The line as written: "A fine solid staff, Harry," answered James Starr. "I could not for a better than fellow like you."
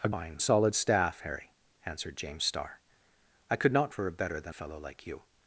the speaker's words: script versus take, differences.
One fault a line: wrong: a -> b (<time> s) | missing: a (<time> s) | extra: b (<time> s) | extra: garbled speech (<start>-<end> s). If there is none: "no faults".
no faults